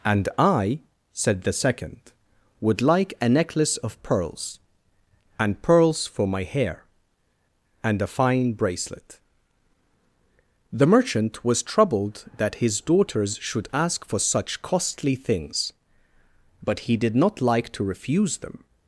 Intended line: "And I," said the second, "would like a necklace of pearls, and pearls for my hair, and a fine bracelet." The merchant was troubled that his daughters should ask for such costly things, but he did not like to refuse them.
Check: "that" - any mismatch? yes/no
no